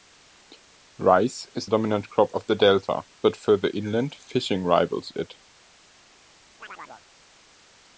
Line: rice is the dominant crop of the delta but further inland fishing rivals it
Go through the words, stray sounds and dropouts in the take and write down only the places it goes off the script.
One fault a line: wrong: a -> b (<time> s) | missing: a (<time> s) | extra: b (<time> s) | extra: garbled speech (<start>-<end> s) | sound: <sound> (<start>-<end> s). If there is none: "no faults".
missing: the (1.7 s)
sound: chirp (6.6-7.1 s)